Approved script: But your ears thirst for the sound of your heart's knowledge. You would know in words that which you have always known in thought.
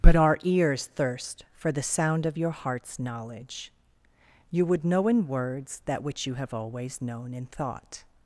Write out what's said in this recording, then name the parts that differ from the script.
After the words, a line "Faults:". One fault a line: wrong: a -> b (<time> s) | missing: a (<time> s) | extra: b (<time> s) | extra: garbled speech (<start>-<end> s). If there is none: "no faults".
But our ears thirst for the sound of your heart's knowledge. You would know in words that which you have always known in thought.
Faults:
wrong: your -> our (0.1 s)